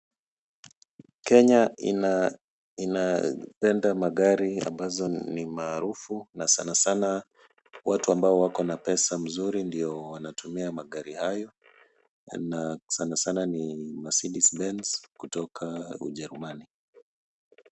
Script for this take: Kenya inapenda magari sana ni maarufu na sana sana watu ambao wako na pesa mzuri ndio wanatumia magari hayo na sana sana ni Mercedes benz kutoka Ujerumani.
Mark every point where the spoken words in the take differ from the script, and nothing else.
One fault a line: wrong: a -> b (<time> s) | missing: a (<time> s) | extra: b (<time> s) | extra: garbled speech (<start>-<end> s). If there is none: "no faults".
wrong: sana -> ambazo (4.6 s)